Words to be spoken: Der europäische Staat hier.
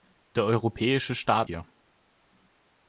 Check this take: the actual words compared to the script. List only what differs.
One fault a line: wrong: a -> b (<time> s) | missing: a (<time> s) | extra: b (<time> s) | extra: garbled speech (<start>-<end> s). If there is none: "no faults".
no faults